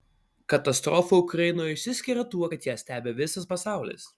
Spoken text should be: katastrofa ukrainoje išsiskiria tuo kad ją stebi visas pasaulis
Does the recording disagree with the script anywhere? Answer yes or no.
no